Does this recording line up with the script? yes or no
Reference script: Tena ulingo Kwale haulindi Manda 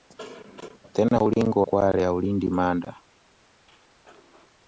yes